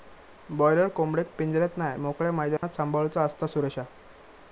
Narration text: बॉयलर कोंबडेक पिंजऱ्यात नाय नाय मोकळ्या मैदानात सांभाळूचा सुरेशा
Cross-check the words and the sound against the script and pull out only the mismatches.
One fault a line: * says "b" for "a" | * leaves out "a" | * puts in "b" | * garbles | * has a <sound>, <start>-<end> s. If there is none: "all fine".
* leaves out "नाय"
* has a dropout, 2.6-2.6 s
* puts in "असता"